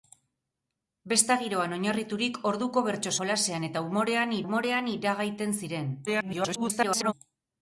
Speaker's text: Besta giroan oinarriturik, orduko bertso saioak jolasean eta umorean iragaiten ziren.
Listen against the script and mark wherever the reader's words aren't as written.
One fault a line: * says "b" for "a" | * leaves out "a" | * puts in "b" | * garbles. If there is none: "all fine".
* leaves out "saioak"
* puts in "umorean"
* garbles